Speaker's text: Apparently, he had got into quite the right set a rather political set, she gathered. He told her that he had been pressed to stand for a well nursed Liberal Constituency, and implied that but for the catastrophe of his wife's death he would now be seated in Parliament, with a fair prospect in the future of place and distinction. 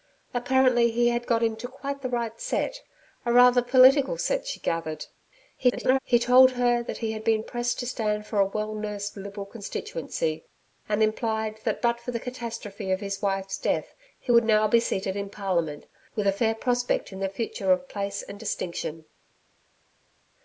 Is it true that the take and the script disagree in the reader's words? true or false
true